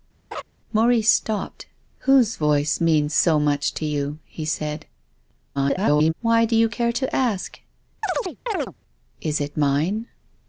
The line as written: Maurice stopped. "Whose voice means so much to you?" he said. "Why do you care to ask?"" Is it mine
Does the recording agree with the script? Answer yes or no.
no